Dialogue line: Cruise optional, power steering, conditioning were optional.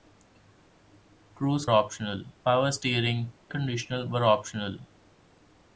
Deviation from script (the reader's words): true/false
false